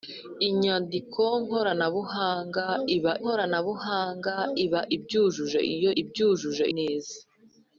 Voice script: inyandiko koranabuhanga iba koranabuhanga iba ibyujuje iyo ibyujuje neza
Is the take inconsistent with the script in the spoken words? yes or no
no